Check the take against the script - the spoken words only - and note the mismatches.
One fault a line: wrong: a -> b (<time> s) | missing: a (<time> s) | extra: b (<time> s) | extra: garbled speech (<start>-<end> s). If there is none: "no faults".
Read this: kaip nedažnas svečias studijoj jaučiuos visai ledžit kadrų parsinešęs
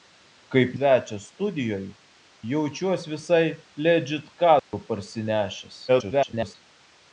missing: nedažnas (0.7 s)
extra: garbled speech (5.9-6.5 s)